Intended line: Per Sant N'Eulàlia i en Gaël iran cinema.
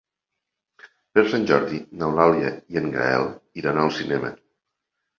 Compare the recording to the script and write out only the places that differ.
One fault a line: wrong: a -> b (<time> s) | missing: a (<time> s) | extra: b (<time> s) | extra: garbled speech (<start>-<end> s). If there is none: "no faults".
extra: Jordi (1.5 s)
extra: al (3.8 s)